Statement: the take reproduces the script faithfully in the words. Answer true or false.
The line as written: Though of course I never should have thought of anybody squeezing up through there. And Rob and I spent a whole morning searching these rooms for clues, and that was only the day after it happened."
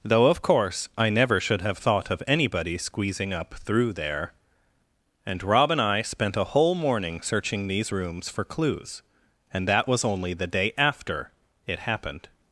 true